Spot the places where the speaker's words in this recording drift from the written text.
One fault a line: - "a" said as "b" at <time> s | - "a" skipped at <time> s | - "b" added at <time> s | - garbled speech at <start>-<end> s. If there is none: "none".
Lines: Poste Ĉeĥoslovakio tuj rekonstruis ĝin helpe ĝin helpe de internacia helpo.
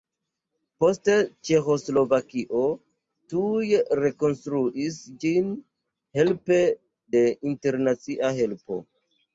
- "ĝin helpe" skipped at 6.6 s